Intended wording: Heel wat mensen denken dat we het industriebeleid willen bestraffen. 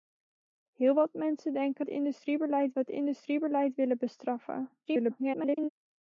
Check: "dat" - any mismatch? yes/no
yes